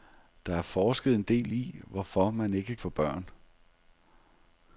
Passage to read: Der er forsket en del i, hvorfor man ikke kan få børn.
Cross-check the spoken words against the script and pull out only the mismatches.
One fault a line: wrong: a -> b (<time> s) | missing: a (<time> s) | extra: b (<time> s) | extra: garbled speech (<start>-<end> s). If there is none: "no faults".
missing: kan (2.8 s)